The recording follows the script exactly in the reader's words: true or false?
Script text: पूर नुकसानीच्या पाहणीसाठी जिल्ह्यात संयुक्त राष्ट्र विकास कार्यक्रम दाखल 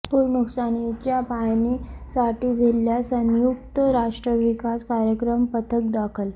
false